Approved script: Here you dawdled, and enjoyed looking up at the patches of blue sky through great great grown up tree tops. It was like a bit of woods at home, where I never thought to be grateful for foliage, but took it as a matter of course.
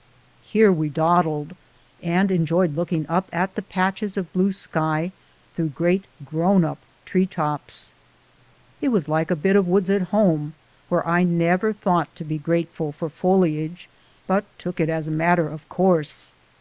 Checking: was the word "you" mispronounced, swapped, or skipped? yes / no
yes